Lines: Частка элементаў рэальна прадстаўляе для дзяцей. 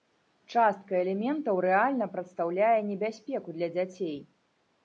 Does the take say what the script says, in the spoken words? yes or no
no